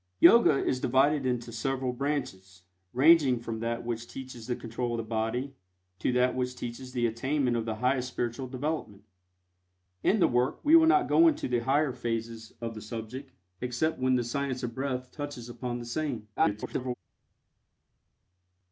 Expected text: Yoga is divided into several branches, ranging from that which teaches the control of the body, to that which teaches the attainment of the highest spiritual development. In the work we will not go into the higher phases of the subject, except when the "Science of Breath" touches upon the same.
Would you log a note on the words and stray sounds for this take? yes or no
yes